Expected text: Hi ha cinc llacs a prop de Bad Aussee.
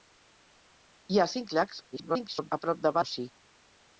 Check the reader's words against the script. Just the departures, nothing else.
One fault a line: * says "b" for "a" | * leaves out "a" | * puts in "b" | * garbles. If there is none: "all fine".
* garbles
* leaves out "Bad"